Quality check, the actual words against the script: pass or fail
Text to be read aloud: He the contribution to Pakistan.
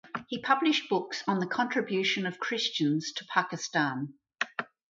fail